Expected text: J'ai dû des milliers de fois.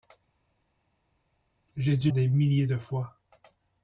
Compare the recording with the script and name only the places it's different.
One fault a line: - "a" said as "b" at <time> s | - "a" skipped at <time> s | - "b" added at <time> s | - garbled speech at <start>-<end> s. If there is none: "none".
none